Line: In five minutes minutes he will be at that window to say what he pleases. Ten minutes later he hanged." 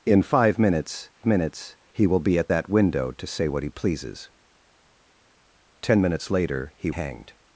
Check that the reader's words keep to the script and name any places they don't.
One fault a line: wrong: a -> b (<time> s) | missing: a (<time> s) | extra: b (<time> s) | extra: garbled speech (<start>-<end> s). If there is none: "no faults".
no faults